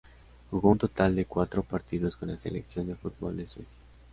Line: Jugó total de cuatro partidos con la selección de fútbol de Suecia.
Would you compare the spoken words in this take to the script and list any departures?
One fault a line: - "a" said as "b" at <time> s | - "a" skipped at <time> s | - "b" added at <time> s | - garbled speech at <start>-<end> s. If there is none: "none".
- "un" added at 0.7 s